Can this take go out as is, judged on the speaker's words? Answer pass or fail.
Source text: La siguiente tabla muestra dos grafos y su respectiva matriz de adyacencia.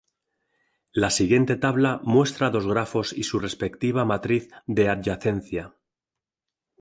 pass